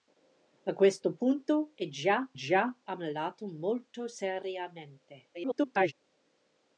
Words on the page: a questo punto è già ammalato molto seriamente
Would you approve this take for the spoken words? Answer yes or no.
no